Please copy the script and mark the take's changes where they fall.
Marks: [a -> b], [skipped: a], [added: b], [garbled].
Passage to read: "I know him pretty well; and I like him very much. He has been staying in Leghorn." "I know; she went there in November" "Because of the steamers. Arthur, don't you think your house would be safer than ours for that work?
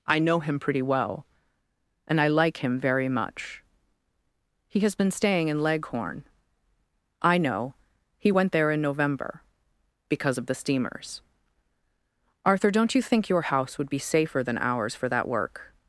"I know him pretty well; and I like him very much. He has been staying in Leghorn." "I know; [she -> he] went there in November" "Because of the steamers. Arthur, don't you think your house would be safer than ours for that work?